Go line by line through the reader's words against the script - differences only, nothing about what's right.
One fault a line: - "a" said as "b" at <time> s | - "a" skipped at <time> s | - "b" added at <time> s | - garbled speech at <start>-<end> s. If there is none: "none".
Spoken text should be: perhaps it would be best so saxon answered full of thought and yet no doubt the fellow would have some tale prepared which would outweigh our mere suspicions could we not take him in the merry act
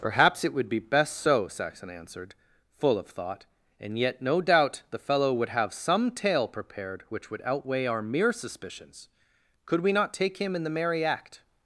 none